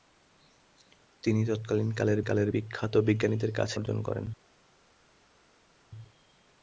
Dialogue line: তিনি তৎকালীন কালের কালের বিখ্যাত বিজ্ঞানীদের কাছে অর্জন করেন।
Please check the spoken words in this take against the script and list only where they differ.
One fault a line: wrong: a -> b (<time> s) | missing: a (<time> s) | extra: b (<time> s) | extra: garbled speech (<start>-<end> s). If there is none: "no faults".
no faults